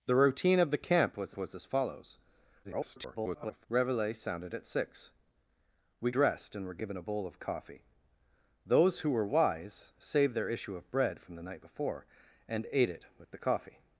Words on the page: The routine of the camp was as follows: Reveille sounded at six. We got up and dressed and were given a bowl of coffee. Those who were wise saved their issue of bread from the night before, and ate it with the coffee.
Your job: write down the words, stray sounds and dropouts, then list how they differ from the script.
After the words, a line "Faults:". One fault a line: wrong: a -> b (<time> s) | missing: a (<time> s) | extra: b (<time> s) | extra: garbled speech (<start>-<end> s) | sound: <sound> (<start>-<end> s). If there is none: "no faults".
The routine of the camp was was as follows: [garbled] Reveille sounded at six. We dressed and were given a bowl of coffee. Those who were wise saved their issue of bread from the night before, and ate it with the coffee.
Faults:
extra: was (1.3 s)
extra: garbled speech (2.6-3.7 s)
missing: got up and (6.1 s)